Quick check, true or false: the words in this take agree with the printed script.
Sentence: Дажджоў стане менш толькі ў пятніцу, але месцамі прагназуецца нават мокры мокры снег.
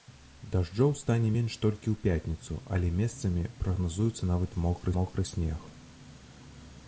true